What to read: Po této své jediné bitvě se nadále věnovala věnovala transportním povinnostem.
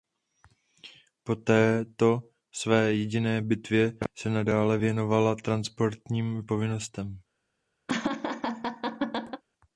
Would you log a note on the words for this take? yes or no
yes